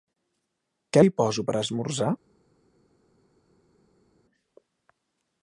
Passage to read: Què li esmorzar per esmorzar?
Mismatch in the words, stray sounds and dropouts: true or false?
true